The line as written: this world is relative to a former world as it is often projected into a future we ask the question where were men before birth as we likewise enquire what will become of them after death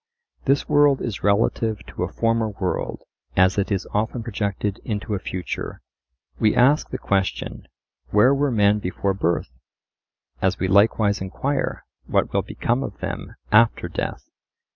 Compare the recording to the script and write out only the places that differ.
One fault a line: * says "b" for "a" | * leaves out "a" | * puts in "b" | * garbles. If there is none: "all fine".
all fine